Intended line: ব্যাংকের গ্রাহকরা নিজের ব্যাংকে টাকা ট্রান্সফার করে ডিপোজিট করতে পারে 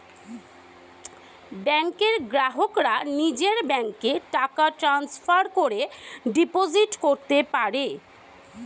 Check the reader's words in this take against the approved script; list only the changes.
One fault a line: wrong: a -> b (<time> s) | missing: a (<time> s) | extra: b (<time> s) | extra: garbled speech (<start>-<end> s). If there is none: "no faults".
no faults